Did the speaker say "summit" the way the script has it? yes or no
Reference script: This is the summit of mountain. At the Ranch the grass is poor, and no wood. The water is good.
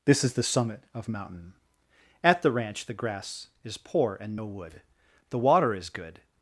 yes